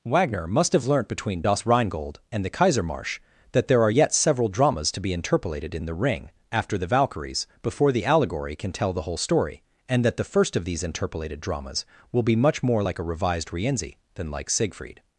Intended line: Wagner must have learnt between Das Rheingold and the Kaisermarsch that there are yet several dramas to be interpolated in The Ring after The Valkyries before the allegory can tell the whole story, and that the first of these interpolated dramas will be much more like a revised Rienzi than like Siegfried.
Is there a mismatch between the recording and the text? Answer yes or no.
no